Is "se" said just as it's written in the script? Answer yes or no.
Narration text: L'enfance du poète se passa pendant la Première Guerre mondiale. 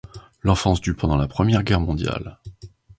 no